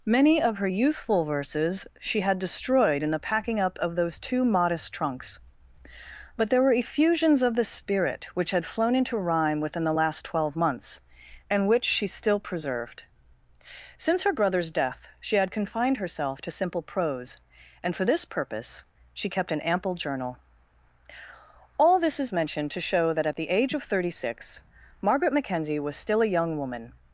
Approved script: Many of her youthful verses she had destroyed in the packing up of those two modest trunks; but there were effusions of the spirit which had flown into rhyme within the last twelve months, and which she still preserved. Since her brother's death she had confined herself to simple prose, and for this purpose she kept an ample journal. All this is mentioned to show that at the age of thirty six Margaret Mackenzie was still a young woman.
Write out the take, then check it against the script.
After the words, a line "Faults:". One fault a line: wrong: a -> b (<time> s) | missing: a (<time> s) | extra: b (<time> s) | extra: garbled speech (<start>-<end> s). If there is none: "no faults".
Many of her youthful verses she had destroyed in the packing up of those two modest trunks; but there were effusions of the spirit which had flown into rhyme within the last twelve months, and which she still preserved. Since her brother's death she had confined herself to simple prose, and for this purpose she kept an ample journal. All this is mentioned to show that at the age of thirty six Margaret Mackenzie was still a young woman.
Faults:
no faults